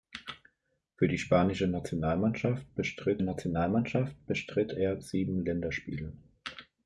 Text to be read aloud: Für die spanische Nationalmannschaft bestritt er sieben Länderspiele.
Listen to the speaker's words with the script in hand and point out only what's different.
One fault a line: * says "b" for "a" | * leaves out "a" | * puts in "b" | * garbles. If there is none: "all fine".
* puts in "Nationalmannschaft bestritt"